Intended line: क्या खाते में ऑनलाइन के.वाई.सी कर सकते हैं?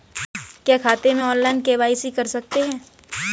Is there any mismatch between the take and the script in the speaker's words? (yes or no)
no